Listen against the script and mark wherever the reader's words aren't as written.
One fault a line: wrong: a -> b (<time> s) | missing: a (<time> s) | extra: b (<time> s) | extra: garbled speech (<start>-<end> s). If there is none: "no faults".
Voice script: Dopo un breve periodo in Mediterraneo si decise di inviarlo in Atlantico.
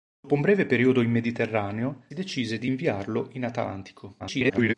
missing: si (2.0 s)
extra: garbled speech (4.2-4.7 s)